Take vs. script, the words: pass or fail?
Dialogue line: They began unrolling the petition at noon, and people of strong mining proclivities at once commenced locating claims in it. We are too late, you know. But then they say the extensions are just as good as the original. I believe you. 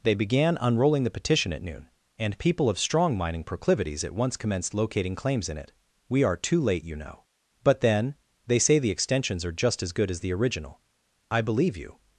pass